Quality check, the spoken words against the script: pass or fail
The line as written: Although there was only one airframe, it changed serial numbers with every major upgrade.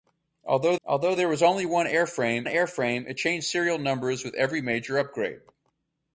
fail